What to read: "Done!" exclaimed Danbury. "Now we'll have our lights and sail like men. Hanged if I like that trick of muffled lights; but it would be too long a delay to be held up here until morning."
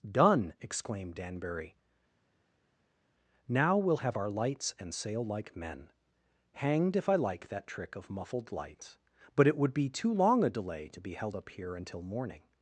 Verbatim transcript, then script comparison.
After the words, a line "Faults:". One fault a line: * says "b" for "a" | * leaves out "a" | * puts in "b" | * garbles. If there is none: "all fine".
"Done!" exclaimed Danbury. "Now we'll have our lights and sail like men. Hanged if I like that trick of muffled lights; but it would be too long a delay to be held up here until morning."
Faults:
all fine